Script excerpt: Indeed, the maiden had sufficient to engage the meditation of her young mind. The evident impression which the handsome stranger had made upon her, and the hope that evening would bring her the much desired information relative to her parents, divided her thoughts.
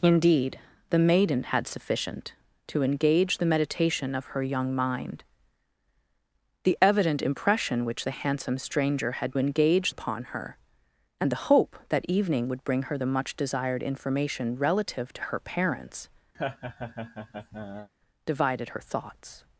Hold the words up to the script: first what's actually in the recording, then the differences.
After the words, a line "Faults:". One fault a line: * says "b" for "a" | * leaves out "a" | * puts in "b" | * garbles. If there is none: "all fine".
Indeed, the maiden had sufficient to engage the meditation of her young mind. The evident impression which the handsome stranger had engage upon her, and the hope that evening would bring her the much desired information relative to her parents, divided her thoughts.
Faults:
* says "engage" for "made"